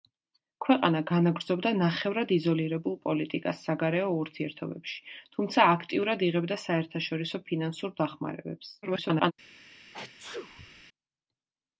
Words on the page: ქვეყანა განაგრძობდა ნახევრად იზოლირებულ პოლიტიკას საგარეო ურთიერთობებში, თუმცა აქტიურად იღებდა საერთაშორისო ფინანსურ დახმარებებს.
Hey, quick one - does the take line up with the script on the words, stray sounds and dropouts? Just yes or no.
no